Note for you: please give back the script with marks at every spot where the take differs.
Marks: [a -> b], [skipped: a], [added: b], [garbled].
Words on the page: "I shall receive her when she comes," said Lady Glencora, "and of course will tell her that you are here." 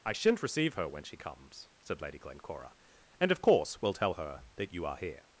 "I [shall -> shan't] receive her when she comes," said Lady Glencora, "and of course will tell her that you are here."